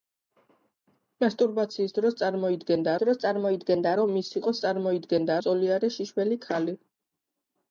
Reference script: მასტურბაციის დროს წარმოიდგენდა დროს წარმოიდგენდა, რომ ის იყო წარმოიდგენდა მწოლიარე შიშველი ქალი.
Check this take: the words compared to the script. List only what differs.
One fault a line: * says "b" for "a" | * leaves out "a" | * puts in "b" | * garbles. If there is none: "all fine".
all fine